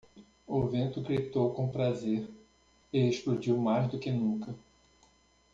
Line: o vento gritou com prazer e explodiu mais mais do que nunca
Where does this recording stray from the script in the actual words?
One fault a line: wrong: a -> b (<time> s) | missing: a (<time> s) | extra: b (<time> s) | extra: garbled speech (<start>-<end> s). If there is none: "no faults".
missing: mais (3.9 s)